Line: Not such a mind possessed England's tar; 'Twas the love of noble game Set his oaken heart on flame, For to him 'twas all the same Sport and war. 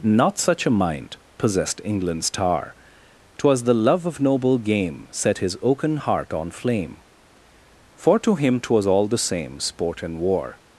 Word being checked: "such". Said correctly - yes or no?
yes